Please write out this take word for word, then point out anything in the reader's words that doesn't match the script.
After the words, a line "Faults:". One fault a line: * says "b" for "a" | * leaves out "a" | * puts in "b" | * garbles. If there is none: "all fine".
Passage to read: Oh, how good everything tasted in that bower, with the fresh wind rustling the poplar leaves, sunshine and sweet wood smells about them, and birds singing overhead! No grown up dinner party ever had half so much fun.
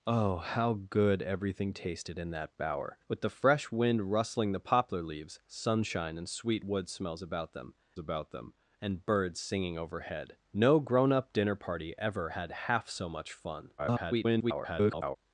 Oh, how good everything tasted in that bower, with the fresh wind rustling the poplar leaves, sunshine and sweet wood smells about them about them, and birds singing overhead! No grown up dinner party ever had half so much fun. [garbled]
Faults:
* puts in "about them"
* garbles